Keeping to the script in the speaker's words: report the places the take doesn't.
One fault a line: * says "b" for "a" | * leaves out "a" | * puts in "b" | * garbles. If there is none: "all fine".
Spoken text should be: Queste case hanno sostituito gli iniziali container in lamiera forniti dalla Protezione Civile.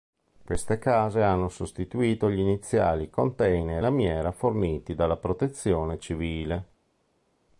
* leaves out "in"